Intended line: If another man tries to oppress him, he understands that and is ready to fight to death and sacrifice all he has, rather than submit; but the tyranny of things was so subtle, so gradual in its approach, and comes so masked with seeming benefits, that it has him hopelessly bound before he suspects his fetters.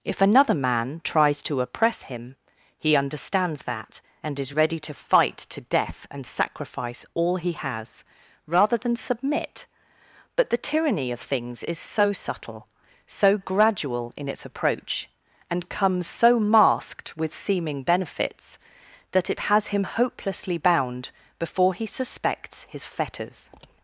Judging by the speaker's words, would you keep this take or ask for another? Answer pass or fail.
fail